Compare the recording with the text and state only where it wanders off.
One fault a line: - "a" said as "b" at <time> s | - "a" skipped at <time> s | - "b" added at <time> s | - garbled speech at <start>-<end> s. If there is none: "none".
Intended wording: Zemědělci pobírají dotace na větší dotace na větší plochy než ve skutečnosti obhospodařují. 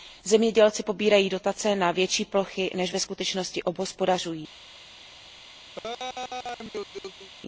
- "dotace na větší" skipped at 2.2 s